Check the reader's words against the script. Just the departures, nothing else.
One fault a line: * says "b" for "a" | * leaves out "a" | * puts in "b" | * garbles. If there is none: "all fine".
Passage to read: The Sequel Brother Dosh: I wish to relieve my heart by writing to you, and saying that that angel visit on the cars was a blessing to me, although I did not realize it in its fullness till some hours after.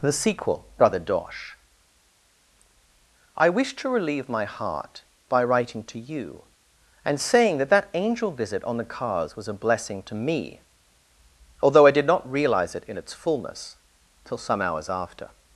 all fine